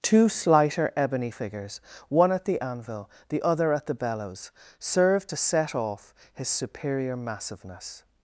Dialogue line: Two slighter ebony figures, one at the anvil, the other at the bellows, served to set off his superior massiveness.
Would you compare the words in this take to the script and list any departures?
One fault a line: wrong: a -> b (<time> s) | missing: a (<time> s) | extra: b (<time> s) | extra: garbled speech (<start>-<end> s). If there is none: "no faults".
no faults